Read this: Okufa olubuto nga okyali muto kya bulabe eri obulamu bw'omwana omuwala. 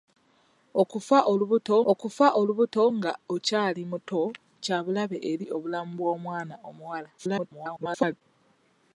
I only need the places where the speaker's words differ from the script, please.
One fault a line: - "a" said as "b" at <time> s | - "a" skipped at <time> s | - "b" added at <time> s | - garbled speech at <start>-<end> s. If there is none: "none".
- "okufa olubuto" added at 1.9 s
- garbled speech at 7.2-8.2 s